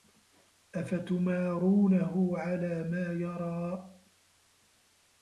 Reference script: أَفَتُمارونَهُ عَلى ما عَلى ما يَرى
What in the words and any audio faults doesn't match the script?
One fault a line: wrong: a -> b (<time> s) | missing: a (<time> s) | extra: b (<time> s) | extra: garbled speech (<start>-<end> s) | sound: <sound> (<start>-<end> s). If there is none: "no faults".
missing: عَلى ما (3.1 s)